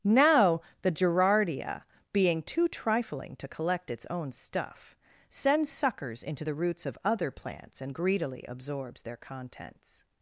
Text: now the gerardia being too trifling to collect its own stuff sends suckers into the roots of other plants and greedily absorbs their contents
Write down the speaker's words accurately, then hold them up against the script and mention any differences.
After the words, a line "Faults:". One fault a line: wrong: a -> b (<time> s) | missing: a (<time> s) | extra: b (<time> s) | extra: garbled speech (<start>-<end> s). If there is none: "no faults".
now the gerardia being too trifling to collect its own stuff sends suckers into the roots of other plants and greedily absorbs their contents
Faults:
no faults